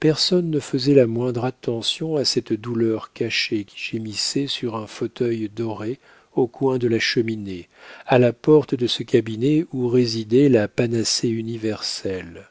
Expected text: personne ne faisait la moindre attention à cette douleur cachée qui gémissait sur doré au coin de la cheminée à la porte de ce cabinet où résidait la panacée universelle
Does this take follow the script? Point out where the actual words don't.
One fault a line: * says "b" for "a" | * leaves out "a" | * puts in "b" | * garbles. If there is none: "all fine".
* puts in "un fauteuil"